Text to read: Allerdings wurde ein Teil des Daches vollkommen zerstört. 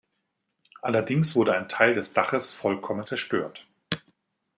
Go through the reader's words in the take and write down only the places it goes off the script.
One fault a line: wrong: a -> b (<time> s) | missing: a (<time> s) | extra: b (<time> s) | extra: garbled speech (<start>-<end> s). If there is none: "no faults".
no faults